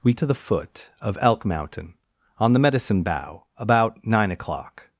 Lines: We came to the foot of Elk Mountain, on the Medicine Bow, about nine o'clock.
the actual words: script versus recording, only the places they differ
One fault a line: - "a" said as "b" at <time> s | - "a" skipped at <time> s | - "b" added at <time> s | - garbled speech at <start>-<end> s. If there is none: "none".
- "came" skipped at 0.1 s